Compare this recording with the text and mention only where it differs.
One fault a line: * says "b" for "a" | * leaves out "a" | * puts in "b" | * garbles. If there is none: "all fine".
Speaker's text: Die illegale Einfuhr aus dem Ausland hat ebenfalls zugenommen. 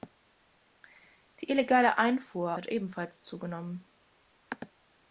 * leaves out "aus dem Ausland"